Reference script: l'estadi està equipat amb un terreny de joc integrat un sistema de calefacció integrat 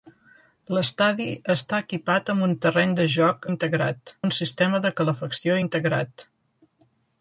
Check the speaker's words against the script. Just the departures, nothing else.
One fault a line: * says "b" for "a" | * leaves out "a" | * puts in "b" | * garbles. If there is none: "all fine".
all fine